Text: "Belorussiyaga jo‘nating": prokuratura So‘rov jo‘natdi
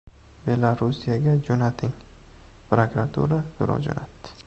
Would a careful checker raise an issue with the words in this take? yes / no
no